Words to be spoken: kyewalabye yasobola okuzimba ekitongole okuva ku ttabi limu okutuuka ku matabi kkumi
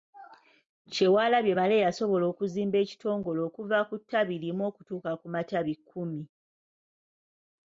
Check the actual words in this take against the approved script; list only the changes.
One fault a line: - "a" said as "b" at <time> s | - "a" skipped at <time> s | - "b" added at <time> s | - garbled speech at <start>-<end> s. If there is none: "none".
- "male" added at 1.6 s